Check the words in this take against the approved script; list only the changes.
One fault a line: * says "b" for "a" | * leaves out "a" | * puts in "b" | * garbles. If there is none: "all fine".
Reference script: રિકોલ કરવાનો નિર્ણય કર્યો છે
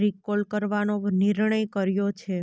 all fine